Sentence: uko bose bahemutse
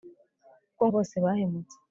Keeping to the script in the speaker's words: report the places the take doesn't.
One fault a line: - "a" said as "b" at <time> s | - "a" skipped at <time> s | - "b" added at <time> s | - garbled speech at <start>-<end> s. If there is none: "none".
none